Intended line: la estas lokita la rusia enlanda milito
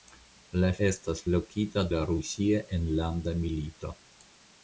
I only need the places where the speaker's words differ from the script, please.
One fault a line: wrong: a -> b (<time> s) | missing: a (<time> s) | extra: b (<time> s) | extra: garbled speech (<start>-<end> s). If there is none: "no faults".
no faults